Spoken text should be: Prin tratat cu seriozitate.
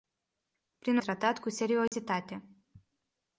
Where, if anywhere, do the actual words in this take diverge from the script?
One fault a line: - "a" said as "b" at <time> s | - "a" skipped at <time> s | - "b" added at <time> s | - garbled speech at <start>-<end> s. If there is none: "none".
none